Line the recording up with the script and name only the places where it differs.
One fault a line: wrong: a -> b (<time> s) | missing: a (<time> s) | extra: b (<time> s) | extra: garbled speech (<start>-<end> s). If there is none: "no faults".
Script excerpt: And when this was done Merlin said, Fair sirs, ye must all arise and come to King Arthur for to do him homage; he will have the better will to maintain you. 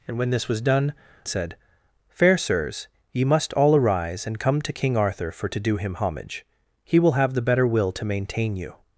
missing: Merlin (0.9 s)